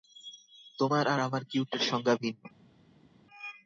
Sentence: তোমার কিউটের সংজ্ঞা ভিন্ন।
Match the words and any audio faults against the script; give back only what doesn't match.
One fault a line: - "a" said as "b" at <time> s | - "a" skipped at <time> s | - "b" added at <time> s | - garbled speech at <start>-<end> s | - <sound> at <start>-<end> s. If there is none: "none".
- "আর আমার" added at 1.1 s